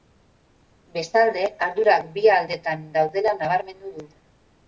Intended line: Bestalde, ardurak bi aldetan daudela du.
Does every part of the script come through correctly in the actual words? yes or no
no